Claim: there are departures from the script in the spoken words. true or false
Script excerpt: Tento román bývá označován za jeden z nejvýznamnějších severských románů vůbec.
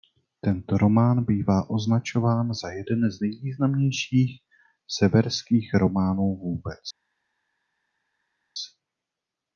false